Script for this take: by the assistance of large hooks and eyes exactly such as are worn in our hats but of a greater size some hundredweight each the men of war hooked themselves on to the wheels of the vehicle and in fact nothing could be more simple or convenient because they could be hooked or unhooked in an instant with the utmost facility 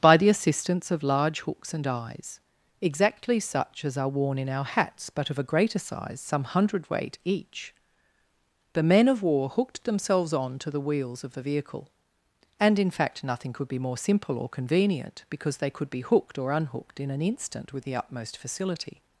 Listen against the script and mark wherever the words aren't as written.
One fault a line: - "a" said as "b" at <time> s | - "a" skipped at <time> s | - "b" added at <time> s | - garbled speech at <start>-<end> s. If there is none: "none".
none